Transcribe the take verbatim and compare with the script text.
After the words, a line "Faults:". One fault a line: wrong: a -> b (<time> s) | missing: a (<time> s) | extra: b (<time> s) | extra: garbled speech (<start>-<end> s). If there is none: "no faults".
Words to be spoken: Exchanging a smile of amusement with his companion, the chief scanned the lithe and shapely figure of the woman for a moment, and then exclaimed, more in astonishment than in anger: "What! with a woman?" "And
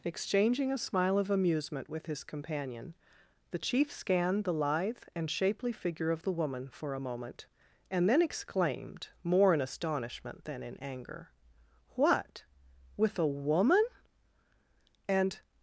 Exchanging a smile of amusement with his companion, the chief scanned the lithe and shapely figure of the woman for a moment, and then exclaimed, more in astonishment than in anger: "What! with a woman?" "And
Faults:
no faults